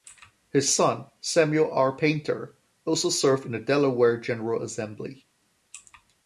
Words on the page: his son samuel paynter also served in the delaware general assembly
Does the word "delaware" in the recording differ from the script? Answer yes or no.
no